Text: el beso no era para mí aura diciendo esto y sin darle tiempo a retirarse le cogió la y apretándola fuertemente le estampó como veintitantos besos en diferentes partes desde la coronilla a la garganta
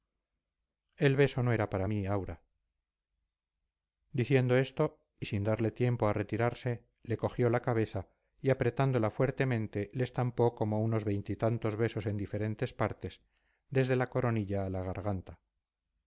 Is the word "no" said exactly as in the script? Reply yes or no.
yes